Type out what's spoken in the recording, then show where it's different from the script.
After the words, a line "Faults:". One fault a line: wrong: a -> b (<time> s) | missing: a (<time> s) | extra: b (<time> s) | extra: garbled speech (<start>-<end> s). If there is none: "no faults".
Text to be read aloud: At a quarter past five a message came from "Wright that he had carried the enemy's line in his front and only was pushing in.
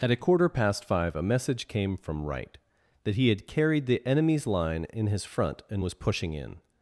At a quarter past five a message came from "Wright that he had carried the enemy's line in his front and was pushing in.
Faults:
missing: only (5.8 s)